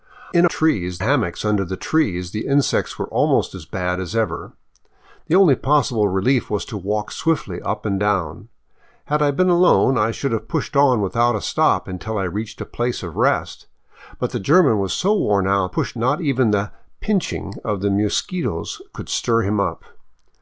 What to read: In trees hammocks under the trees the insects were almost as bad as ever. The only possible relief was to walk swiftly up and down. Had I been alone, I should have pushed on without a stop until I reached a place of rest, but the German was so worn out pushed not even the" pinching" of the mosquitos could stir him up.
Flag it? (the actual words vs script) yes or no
no